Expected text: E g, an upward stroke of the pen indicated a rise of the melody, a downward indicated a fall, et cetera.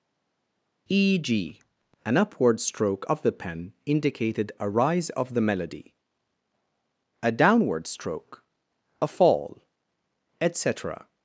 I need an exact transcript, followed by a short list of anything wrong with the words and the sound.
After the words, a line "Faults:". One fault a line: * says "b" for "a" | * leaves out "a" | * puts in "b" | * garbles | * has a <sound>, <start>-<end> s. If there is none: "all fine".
E g, an upward stroke of the pen indicated a rise of the melody, a downward stroke a fall, et cetera.
Faults:
* says "stroke" for "indicated"